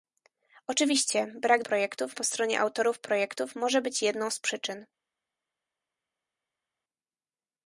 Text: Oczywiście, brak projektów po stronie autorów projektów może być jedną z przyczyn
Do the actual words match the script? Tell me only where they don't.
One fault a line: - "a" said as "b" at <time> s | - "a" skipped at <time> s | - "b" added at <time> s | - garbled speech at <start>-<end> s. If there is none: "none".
none